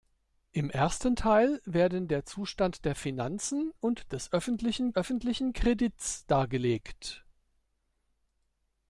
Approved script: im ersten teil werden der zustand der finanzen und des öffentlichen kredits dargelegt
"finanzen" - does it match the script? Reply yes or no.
yes